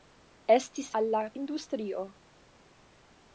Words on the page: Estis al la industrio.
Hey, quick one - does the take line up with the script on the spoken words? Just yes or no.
yes